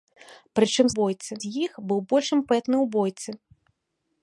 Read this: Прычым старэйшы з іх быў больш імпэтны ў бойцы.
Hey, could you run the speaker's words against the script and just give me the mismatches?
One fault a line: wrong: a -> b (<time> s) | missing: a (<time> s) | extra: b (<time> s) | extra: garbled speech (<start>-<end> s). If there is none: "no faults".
wrong: старэйшы -> бойцы (1.0 s)